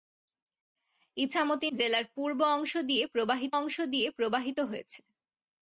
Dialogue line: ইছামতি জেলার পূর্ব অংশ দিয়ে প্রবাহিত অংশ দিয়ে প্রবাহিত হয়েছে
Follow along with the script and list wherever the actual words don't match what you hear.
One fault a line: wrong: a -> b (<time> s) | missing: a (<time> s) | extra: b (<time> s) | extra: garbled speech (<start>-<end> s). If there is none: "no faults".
no faults